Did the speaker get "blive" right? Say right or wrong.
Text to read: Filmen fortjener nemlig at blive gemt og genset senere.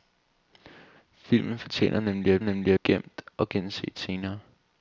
wrong